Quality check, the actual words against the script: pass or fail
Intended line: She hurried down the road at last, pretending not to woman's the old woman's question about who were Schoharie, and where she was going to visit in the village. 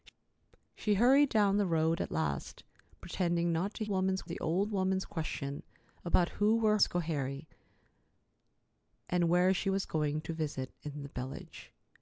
pass